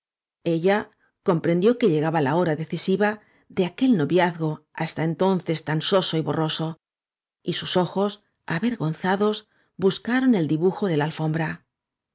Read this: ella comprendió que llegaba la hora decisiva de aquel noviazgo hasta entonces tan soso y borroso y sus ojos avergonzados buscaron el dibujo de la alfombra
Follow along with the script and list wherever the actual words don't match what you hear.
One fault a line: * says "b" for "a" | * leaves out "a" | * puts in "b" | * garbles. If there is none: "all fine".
all fine